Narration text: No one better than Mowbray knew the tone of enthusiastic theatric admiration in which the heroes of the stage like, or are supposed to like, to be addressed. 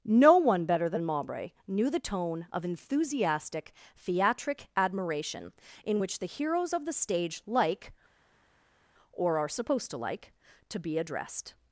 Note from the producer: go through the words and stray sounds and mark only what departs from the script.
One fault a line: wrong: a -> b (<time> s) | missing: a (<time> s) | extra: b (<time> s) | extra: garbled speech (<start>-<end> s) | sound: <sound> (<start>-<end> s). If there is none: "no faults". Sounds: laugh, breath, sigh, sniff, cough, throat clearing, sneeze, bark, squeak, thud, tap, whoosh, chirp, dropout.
no faults